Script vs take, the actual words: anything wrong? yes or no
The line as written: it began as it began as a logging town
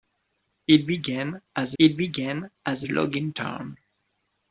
no